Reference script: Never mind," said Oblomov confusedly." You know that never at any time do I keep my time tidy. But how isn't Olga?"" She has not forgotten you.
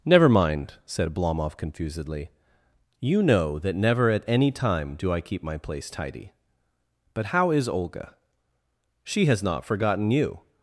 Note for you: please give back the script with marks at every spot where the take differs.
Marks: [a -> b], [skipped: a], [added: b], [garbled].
Never mind," said Oblomov confusedly." You know that never at any time do I keep my [time -> place] tidy. But how [isn't -> is] Olga?"" She has not forgotten you.